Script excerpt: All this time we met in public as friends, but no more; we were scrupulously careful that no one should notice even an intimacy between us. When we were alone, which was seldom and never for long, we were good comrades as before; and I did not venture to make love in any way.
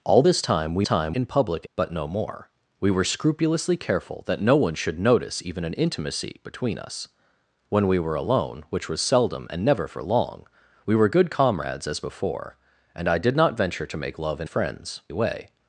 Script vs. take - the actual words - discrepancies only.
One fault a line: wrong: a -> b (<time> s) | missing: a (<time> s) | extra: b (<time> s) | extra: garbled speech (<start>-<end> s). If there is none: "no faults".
wrong: met -> time (0.8 s)
missing: as friends (1.7 s)
wrong: any -> friends (14.4 s)